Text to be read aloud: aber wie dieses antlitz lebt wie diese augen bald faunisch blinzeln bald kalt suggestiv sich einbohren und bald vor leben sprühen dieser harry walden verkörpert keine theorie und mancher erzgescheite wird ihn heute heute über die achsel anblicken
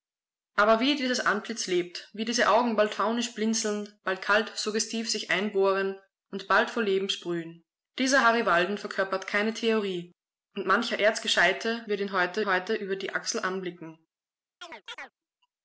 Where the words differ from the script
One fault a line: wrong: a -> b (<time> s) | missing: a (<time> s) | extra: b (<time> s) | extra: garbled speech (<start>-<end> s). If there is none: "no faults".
no faults